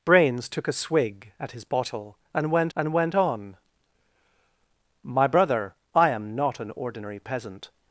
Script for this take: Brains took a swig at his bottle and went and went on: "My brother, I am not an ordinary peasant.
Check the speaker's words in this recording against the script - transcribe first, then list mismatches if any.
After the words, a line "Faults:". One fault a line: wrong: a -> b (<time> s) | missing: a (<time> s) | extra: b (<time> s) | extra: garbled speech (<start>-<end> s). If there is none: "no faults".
Brains took a swig at his bottle and went and went on: "My brother, I am not an ordinary peasant.
Faults:
no faults